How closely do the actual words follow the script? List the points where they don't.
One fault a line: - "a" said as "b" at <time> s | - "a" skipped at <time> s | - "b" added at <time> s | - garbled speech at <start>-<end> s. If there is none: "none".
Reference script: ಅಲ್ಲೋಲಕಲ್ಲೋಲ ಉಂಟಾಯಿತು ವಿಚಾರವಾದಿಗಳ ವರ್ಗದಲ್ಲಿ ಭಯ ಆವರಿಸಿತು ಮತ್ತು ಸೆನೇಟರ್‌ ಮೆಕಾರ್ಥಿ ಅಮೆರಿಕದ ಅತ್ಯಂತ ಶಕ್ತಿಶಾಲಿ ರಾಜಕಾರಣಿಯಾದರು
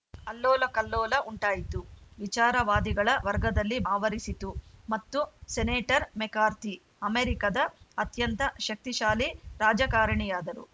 - "ಭಯ" skipped at 3.8 s